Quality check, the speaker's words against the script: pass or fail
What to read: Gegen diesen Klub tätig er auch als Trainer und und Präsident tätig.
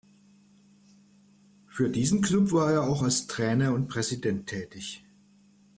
fail